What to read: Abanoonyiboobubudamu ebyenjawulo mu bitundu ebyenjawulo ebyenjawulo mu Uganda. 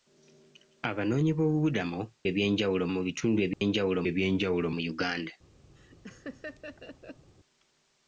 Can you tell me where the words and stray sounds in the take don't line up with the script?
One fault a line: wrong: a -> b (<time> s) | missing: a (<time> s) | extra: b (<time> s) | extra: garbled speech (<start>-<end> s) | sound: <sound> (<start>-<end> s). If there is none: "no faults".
sound: dropout (3.5-3.6 s)
sound: laugh (5.8-7.3 s)